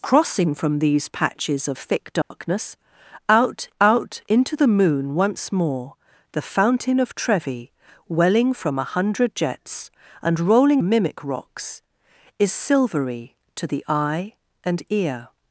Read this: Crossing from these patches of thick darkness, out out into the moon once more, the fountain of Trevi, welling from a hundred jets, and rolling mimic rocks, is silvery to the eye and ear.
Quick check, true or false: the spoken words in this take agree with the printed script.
true